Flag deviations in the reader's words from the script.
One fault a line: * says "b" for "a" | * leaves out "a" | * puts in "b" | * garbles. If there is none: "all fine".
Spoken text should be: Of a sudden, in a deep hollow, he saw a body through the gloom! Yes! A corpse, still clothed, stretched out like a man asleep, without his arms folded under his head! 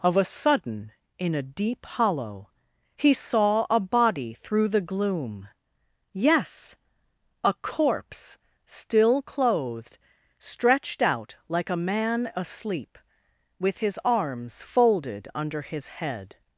* says "with" for "without"